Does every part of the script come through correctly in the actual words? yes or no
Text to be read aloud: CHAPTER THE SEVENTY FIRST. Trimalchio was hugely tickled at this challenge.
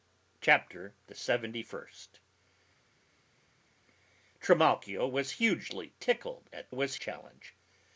no